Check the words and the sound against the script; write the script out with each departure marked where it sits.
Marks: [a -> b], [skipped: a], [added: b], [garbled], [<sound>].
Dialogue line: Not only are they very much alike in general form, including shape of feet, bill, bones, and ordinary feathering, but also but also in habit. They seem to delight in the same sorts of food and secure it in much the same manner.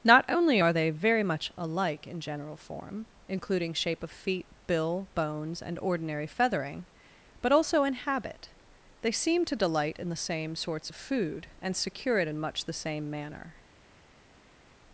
Not only are they very much alike in general form, including shape of feet, bill, bones, and ordinary feathering, but also [skipped: but also] in habit. They seem to delight in the same sorts of food and secure it in much the same manner.